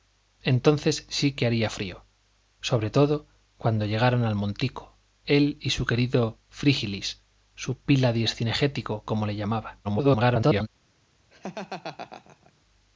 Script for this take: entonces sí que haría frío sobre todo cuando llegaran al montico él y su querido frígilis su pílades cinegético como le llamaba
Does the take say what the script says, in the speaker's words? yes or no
no